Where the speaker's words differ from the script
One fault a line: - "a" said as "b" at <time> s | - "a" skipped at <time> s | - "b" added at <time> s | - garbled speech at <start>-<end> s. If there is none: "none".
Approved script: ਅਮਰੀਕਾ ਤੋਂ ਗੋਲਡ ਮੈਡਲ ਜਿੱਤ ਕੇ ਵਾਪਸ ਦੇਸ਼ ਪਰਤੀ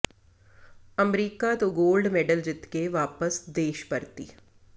none